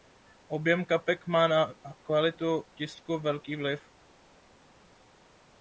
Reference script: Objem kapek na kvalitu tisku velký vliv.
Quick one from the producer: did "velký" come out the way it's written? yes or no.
yes